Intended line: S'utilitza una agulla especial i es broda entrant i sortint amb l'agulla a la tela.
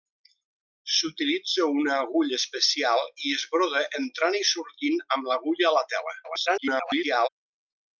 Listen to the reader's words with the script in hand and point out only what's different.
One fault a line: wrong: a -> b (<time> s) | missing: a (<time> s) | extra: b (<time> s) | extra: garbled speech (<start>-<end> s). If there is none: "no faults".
extra: garbled speech (6.2-7.3 s)